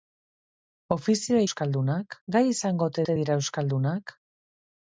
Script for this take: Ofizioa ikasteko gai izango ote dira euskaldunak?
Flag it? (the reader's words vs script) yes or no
yes